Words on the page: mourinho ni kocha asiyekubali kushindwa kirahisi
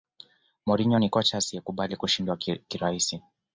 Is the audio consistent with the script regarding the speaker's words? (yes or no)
yes